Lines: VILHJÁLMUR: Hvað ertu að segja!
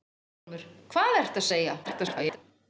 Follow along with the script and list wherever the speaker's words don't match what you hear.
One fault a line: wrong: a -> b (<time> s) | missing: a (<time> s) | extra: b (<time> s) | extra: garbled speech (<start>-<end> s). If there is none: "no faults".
extra: garbled speech (1.8-2.4 s)